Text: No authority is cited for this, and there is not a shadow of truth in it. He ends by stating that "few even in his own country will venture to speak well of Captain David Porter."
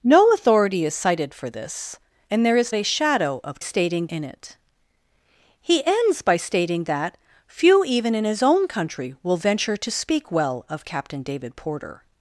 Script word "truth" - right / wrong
wrong